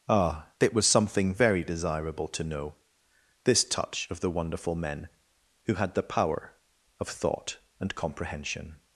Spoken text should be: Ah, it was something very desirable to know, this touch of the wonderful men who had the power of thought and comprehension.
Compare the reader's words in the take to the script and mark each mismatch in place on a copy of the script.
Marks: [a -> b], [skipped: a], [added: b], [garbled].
Ah, it was something very desirable to know, this touch of the wonderful men who had the power of thought and comprehension.